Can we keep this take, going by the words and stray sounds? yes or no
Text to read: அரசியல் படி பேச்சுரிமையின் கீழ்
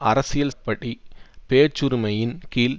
yes